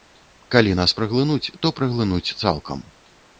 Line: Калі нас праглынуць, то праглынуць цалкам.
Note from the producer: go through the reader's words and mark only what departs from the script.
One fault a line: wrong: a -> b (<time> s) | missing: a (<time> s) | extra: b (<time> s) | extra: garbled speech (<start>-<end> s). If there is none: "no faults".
no faults